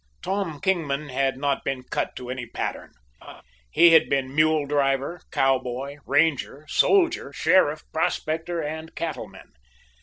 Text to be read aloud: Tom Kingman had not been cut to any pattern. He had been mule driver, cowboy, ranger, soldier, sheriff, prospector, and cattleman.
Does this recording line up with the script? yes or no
yes